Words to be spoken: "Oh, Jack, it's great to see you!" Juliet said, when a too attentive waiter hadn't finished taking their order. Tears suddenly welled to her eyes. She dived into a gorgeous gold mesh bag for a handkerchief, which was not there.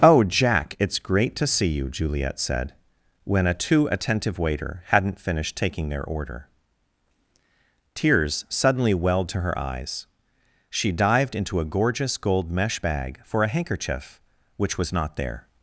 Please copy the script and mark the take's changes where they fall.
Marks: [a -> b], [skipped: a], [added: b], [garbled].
"Oh, Jack, it's great to see you!" Juliet said, when a too attentive waiter hadn't finished taking their order. Tears suddenly welled to her eyes. She dived into a gorgeous gold mesh bag for a handkerchief, which was not there.